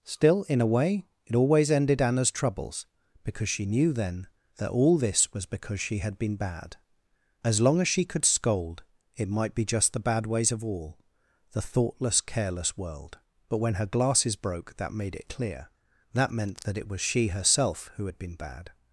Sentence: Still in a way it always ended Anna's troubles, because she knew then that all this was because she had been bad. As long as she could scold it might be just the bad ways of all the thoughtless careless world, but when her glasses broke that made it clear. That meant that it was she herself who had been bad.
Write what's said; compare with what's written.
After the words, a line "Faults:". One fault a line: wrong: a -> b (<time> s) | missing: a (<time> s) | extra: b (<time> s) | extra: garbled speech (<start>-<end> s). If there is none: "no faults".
Still in a way it always ended Anna's troubles, because she knew then that all this was because she had been bad. As long as she could scold it might be just the bad ways of all the thoughtless careless world, but when her glasses broke that made it clear. That meant that it was she herself who had been bad.
Faults:
no faults